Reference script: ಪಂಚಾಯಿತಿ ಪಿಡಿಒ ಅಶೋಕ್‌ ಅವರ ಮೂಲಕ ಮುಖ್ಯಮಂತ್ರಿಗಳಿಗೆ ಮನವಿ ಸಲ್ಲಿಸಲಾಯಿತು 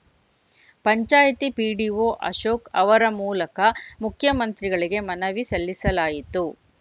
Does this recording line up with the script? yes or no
yes